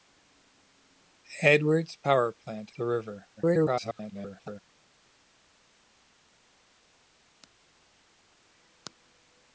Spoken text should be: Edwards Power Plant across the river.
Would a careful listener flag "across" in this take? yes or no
yes